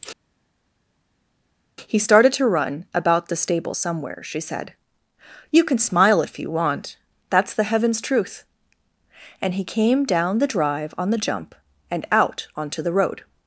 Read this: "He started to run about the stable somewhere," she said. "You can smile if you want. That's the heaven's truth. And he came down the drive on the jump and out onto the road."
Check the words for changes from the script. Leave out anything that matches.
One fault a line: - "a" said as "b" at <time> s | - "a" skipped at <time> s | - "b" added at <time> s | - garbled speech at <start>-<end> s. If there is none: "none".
none